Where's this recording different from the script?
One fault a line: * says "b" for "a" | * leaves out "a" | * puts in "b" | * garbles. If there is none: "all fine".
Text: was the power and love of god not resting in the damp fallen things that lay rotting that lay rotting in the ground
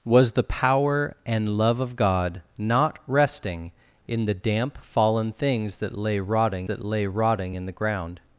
all fine